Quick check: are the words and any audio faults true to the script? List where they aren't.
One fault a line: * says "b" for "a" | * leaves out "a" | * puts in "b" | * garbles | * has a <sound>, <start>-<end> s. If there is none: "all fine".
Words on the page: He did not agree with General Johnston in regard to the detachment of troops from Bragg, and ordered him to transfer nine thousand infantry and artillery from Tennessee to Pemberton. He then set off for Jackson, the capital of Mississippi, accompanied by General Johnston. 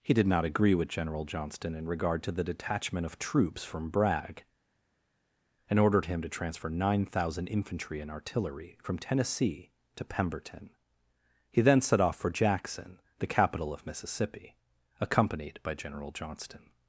all fine